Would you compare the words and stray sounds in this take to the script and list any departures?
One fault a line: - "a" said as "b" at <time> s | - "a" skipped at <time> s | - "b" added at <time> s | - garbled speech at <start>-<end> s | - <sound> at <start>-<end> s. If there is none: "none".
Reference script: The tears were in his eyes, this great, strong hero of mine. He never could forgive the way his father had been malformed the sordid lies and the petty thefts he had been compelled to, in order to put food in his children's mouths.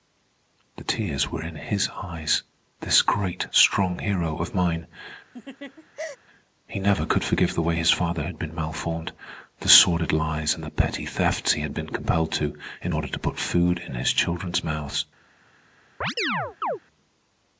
- laugh at 5.3-6.2 s
- chirp at 16.0-16.8 s